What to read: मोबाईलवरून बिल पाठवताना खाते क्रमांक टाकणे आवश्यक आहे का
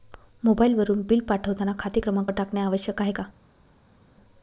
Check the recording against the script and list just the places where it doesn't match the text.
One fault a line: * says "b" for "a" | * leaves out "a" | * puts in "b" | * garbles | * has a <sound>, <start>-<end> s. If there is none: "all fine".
all fine